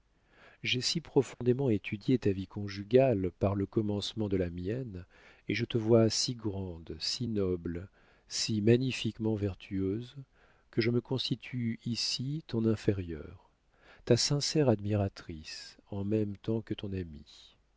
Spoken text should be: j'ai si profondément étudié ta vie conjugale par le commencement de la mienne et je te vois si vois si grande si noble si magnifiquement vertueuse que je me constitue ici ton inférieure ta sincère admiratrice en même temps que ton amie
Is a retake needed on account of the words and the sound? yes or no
yes